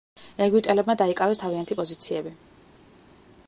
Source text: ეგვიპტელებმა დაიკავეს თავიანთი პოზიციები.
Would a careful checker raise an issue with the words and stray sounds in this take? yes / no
no